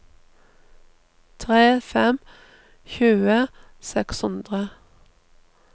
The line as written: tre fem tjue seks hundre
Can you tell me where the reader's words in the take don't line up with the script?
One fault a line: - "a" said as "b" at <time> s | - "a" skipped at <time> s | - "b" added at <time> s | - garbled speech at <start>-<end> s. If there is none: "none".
none